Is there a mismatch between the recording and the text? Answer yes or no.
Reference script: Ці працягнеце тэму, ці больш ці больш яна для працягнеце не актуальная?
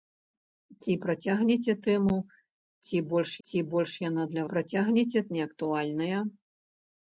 no